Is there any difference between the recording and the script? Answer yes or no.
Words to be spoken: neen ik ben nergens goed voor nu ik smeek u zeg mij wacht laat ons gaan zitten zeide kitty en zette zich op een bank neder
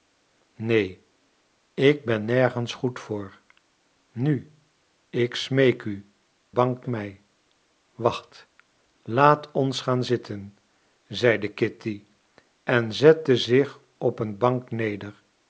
yes